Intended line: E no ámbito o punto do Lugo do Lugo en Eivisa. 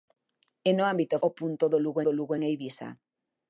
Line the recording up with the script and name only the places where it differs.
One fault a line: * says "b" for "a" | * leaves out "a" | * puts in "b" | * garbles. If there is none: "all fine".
all fine